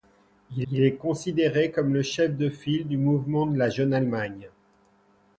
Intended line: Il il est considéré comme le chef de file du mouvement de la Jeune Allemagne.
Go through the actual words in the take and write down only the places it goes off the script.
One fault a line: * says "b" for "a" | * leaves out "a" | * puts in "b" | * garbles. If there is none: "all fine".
all fine